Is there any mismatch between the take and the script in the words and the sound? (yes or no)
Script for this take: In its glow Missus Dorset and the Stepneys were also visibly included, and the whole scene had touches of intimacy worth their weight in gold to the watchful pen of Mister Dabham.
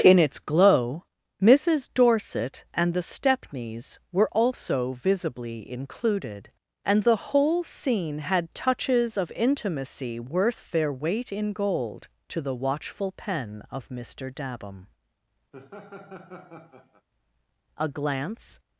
yes